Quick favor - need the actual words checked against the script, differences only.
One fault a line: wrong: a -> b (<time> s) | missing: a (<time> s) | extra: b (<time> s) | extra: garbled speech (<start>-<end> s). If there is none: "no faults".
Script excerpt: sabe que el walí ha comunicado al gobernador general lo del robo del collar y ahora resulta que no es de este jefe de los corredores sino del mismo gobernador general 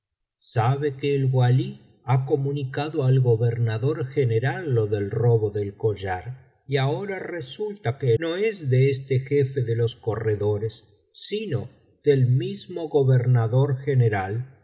no faults